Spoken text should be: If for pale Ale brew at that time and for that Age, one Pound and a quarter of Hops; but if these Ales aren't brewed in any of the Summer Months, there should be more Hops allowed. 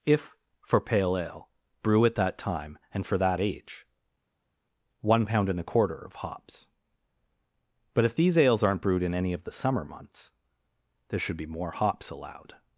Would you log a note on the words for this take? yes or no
no